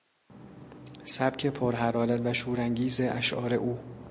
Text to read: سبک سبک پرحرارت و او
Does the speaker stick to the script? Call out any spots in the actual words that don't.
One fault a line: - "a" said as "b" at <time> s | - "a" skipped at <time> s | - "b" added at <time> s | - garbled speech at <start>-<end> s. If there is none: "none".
- "سبک" skipped at 1.5 s
- "شورانگیز اشعار" added at 2.3 s